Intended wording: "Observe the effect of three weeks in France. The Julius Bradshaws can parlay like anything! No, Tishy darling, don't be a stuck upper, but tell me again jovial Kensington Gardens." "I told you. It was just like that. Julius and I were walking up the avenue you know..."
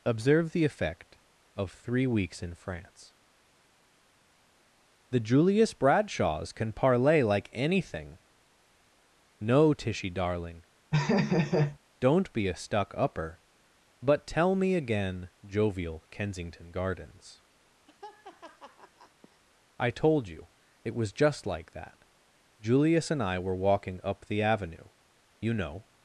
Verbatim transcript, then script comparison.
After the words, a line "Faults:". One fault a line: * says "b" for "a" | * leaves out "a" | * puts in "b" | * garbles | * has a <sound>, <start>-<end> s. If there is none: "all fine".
"Observe the effect of three weeks in France. The Julius Bradshaws can parlay like anything! No, Tishy darling, don't be a stuck upper, but tell me again jovial Kensington Gardens." "I told you. It was just like that. Julius and I were walking up the avenue you know..."
Faults:
* has a laugh, 10.9-11.8 s
* has a laugh, 17.9-19.4 s